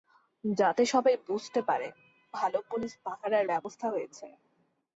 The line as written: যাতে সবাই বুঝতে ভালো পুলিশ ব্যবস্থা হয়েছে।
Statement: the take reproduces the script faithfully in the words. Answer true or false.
false